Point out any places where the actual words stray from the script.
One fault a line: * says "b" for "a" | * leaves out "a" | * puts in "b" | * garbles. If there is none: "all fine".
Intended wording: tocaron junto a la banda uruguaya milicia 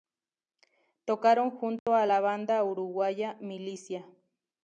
all fine